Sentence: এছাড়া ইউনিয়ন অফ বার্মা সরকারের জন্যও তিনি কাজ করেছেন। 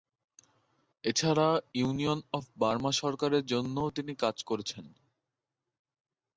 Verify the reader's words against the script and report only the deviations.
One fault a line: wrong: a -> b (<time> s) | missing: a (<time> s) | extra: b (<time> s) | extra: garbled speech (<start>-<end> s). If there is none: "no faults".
no faults